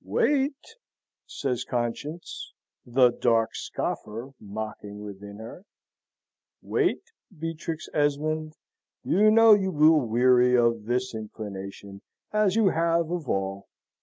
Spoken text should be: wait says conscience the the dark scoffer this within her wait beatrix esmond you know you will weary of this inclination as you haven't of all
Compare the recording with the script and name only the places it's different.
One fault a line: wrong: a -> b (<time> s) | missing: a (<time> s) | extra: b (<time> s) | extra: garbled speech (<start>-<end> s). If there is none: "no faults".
missing: the (3.1 s)
wrong: this -> mocking (4.4 s)
wrong: haven't -> have (12.7 s)